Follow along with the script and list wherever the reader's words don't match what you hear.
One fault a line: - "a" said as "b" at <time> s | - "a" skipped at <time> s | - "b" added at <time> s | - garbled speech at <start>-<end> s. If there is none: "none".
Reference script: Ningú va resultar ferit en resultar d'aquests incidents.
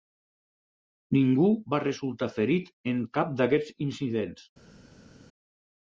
- "resultar" said as "cap" at 3.2 s